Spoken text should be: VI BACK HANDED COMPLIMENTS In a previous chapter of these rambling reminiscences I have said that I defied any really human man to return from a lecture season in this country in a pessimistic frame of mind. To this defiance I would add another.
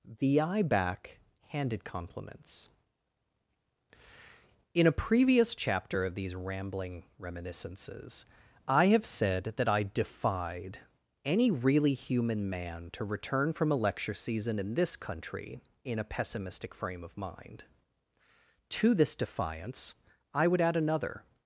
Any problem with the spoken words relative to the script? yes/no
yes